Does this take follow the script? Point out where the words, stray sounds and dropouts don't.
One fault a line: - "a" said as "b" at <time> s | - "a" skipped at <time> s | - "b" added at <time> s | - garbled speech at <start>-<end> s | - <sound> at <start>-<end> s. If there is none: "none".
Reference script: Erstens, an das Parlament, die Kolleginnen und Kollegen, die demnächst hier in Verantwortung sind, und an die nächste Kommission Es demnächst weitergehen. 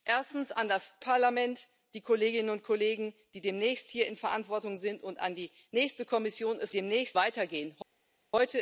none